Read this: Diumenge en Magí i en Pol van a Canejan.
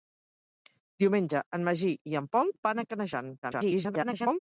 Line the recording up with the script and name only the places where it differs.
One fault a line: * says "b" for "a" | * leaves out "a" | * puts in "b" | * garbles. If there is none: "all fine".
* garbles